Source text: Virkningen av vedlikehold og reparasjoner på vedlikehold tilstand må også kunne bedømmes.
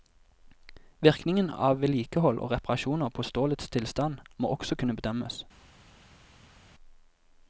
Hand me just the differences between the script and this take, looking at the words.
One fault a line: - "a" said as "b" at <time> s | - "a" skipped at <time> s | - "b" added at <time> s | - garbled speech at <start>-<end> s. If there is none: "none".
- "vedlikehold" said as "stålets" at 3.3 s